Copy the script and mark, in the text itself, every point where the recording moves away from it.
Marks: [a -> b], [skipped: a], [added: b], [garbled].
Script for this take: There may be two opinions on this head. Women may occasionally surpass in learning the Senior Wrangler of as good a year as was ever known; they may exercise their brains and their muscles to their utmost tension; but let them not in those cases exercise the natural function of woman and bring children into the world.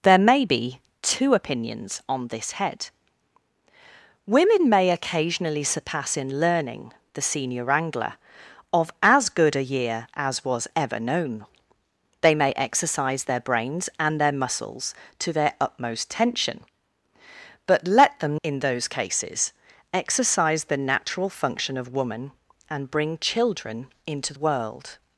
There may be two opinions on this head. Women may occasionally surpass in learning the Senior Wrangler of as good a year as was ever known; they may exercise their brains and their muscles to their utmost tension; but let them [skipped: not] in those cases exercise the natural function of woman and bring children into [skipped: the] world.